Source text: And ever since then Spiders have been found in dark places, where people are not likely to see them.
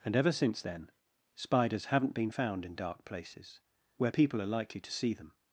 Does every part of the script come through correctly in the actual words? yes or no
no